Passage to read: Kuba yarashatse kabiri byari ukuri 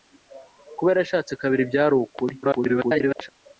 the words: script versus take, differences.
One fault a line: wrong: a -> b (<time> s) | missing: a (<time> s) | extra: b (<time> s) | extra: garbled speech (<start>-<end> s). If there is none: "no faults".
extra: garbled speech (2.4-3.3 s)